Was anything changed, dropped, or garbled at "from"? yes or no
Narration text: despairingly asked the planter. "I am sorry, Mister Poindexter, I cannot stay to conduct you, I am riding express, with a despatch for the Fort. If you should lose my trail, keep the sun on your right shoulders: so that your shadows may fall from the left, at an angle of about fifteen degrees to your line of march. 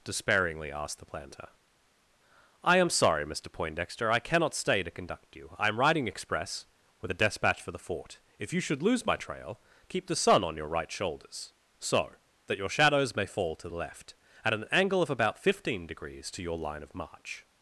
yes